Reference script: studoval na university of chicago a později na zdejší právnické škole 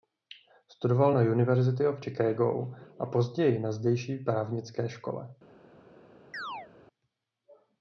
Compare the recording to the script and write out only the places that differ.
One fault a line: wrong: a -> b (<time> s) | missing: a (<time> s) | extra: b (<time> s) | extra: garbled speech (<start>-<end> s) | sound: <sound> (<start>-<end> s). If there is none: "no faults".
sound: chirp (6.3-6.7 s)